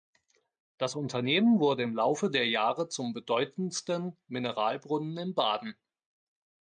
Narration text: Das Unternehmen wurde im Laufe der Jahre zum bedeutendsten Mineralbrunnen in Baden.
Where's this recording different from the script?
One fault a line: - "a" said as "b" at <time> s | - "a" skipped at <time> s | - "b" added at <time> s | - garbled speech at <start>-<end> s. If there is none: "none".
none